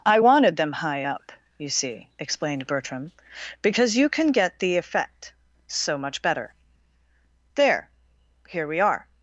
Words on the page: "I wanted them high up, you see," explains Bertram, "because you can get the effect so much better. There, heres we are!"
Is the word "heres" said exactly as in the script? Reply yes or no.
no